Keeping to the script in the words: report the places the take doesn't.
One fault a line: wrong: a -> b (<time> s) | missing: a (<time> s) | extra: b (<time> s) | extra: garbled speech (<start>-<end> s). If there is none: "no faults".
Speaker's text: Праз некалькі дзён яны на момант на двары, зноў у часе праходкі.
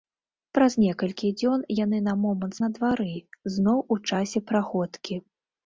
no faults